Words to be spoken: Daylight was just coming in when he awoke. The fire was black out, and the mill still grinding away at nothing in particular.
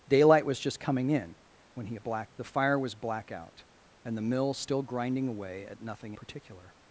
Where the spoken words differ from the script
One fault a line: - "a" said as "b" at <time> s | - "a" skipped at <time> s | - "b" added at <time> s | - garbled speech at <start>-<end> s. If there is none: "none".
- "awoke" said as "black" at 2.0 s
- "in" skipped at 6.1 s